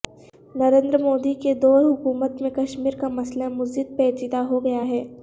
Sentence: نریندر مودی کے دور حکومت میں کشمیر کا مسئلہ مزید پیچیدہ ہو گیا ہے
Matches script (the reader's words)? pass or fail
pass